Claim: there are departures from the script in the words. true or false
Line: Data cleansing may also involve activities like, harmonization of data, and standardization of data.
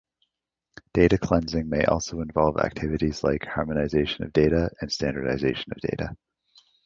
false